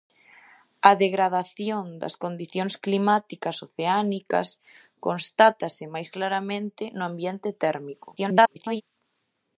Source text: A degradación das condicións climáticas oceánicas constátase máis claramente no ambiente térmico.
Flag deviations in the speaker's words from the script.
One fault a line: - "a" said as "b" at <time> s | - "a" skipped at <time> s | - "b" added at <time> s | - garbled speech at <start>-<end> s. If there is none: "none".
- garbled speech at 8.2-8.8 s